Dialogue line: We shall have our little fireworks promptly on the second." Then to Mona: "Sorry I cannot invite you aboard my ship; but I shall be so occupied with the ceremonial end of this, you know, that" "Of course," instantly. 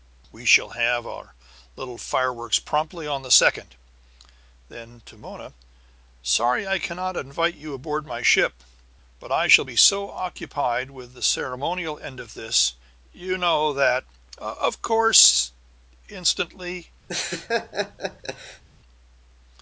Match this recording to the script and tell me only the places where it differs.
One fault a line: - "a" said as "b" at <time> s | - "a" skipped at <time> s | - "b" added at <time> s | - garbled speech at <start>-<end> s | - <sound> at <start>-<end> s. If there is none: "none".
- laugh at 17.1-18.6 s